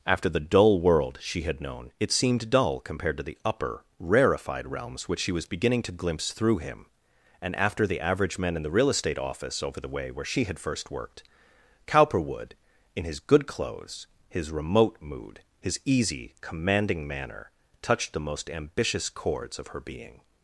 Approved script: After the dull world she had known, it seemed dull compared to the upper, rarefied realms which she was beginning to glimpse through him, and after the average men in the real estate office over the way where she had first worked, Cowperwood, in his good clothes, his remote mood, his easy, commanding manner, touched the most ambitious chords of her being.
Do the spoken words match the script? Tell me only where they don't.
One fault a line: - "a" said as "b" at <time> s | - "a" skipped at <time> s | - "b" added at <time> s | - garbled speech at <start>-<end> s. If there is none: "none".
none